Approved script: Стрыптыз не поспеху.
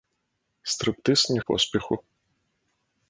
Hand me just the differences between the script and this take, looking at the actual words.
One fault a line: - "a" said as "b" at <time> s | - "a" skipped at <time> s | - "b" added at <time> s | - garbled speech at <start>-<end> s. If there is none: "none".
none